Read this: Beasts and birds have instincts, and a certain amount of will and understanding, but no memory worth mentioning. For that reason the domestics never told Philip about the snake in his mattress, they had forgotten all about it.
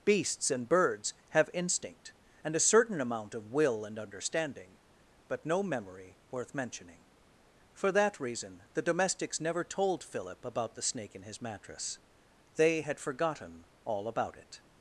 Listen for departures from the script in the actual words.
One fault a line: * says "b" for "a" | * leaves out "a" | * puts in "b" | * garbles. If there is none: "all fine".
* says "instinct" for "instincts"